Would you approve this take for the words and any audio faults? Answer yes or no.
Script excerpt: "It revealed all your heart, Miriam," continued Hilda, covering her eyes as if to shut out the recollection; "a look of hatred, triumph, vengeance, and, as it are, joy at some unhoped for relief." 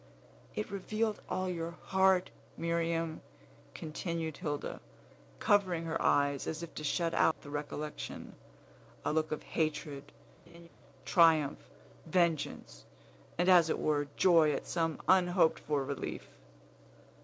no